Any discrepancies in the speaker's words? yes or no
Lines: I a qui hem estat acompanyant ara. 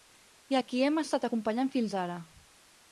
yes